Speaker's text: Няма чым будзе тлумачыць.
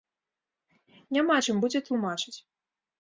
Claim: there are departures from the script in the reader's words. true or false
false